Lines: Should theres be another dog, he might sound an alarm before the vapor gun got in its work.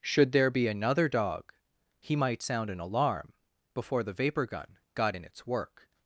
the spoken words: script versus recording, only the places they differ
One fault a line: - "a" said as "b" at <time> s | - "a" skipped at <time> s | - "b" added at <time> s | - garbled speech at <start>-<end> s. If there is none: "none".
- "theres" said as "there" at 0.3 s